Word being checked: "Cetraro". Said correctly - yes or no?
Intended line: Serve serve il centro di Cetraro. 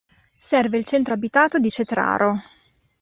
yes